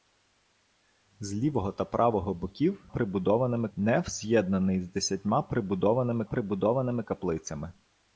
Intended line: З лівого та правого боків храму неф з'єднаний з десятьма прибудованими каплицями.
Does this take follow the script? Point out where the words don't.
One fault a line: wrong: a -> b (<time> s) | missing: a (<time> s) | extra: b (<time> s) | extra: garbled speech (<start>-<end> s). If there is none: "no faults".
wrong: храму -> прибудованими (2.9 s)
extra: прибудованими (6.2 s)